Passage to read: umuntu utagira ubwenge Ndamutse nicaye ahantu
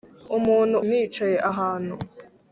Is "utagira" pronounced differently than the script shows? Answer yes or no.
yes